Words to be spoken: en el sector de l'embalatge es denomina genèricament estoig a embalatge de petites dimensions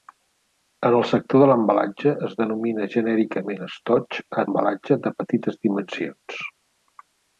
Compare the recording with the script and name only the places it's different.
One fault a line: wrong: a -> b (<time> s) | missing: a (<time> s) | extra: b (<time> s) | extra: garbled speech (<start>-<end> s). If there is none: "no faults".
no faults